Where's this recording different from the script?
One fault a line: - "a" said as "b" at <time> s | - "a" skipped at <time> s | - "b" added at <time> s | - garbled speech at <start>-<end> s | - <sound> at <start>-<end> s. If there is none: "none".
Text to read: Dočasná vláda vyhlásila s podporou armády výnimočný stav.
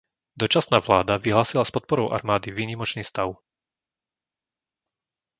none